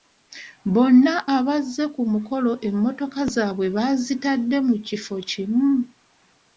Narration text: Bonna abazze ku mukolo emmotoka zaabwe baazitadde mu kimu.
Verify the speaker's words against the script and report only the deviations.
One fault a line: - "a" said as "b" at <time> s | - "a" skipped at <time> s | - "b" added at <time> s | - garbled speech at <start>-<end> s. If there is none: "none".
- "kifo" added at 4.9 s